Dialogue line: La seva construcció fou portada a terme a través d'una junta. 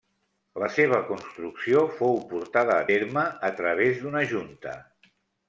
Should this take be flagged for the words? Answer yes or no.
no